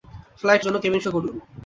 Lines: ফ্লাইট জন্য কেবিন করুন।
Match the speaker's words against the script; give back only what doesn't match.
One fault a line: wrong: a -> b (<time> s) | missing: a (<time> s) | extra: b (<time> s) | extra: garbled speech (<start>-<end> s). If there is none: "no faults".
no faults